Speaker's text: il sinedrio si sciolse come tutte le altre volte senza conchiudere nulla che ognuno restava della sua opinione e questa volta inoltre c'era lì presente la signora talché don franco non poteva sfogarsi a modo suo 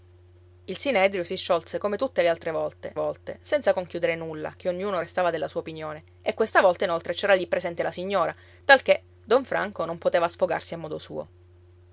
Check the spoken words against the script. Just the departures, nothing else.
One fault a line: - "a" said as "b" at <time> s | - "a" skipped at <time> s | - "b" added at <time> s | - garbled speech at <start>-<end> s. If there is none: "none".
- "volte" added at 2.9 s